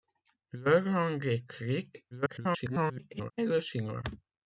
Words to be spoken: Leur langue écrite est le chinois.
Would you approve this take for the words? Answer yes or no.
no